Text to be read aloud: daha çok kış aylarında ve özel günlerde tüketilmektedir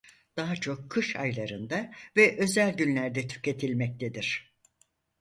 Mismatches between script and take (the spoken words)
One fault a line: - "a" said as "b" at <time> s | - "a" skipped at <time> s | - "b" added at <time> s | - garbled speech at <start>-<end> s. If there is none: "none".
none